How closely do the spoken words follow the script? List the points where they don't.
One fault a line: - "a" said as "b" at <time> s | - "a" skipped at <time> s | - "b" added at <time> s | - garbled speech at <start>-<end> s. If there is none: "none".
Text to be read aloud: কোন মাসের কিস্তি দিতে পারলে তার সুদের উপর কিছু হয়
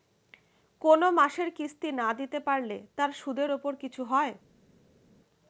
- "না" added at 1.9 s